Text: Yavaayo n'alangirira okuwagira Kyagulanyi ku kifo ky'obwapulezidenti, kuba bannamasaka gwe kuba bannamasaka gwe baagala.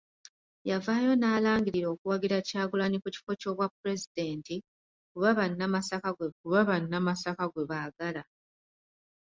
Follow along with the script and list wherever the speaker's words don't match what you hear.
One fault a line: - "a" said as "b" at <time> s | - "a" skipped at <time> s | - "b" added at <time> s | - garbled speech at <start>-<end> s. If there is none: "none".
none